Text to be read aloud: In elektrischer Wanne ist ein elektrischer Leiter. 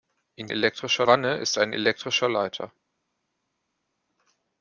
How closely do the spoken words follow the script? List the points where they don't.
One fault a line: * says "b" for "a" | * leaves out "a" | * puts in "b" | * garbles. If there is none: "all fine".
all fine